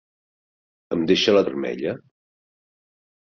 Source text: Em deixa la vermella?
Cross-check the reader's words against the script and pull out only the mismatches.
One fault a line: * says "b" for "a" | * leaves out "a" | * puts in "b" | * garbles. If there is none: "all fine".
all fine